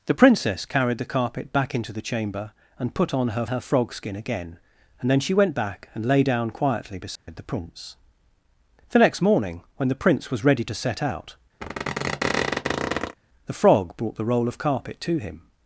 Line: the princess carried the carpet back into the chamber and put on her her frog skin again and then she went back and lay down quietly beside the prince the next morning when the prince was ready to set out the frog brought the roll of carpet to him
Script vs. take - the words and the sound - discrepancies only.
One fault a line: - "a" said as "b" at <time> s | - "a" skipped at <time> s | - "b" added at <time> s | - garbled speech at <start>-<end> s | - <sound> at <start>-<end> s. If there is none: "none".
- dropout at 7.2-7.3 s
- squeak at 11.6-13.2 s